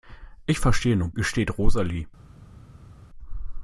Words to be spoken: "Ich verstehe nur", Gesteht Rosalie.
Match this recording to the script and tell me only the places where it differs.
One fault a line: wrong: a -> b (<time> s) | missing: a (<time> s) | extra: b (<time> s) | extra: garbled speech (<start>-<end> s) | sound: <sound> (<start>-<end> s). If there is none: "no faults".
no faults